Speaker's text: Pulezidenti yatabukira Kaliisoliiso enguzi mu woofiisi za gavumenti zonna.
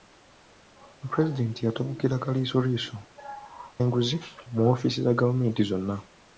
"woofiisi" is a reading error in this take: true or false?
false